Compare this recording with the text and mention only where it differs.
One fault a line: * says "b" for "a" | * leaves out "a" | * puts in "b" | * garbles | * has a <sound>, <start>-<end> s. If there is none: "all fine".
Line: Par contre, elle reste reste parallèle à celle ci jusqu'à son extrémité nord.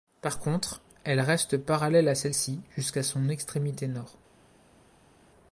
* leaves out "reste"